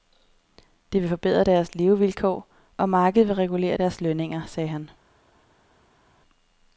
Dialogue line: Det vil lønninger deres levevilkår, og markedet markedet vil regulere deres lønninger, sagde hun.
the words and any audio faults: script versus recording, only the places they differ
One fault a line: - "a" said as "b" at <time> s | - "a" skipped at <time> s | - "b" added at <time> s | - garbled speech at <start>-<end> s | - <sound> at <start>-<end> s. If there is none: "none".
- "lønninger" said as "forbedre" at 1.1 s
- "markedet" skipped at 3.3 s
- "hun" said as "han" at 4.7 s